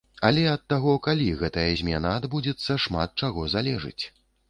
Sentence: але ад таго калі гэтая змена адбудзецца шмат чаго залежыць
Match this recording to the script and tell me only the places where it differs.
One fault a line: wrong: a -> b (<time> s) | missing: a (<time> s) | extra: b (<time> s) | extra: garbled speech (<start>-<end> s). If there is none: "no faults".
no faults